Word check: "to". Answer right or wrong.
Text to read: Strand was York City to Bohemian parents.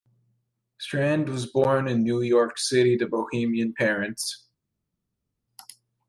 right